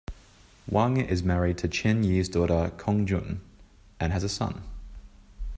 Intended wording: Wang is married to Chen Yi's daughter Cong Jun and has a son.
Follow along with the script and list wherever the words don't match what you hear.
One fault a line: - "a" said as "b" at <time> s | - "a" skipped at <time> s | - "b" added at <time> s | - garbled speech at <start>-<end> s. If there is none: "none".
none